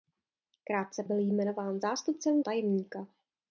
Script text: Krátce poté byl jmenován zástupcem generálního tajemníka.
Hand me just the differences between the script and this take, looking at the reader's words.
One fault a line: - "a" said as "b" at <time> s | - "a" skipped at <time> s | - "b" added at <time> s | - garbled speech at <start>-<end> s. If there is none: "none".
- "poté" skipped at 1.0 s
- "generálního" skipped at 2.4 s